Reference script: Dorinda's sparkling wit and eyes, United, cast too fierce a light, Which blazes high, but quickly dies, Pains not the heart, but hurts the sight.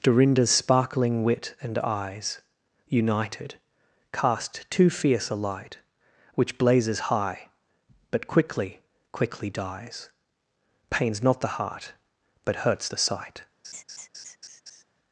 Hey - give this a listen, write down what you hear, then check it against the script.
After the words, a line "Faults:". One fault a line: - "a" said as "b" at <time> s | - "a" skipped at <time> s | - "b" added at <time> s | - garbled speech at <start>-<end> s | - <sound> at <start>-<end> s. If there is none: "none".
Dorinda's sparkling wit and eyes, United, cast too fierce a light, Which blazes high, but quickly quickly dies, Pains not the heart, but hurts the sight.
Faults:
- "quickly" added at 9.1 s
- laugh at 13.6-14.8 s